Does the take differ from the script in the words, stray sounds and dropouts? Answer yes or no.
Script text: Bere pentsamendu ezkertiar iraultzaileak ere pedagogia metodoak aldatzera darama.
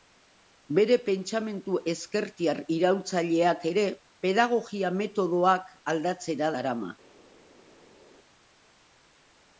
no